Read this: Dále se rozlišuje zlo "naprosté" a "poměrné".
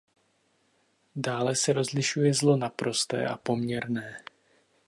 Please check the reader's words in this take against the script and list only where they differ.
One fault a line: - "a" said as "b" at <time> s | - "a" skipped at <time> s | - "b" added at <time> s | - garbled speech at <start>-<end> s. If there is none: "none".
none